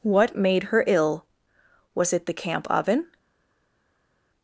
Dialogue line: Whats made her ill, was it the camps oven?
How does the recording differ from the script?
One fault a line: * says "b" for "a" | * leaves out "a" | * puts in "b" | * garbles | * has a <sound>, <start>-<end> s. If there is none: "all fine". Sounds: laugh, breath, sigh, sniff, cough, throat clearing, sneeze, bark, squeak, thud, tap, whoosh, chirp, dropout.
* says "What" for "Whats"
* says "camp" for "camps"